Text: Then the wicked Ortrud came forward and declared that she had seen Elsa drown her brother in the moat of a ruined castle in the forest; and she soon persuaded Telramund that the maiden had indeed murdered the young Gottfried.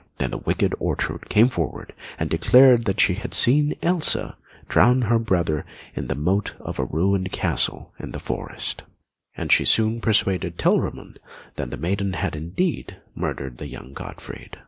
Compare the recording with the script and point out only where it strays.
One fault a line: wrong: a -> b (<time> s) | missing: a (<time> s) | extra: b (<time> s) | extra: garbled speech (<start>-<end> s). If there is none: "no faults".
no faults